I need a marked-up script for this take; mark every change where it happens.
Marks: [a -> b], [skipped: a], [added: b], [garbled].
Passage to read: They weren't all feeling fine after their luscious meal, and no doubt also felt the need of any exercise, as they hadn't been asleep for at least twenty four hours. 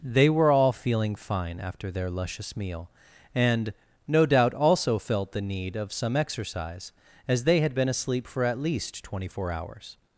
They [weren't -> were] all feeling fine after their luscious meal, and no doubt also felt the need of [any -> some] exercise, as they [hadn't -> had] been asleep for at least twenty four hours.